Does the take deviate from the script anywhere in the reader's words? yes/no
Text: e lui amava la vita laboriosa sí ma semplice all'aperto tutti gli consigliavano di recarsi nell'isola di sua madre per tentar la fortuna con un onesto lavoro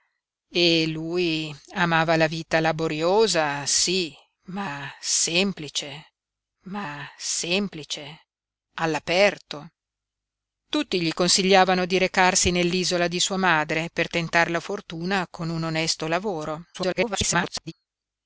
yes